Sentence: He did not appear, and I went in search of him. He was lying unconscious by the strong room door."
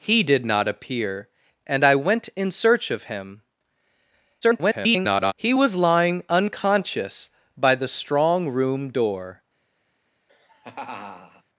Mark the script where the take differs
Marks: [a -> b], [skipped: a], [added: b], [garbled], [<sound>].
He did not appear, and I went in search of him. [garbled] He was lying unconscious by the strong room door." [laugh]